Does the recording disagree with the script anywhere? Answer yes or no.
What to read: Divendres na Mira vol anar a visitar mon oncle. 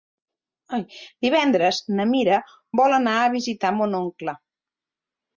no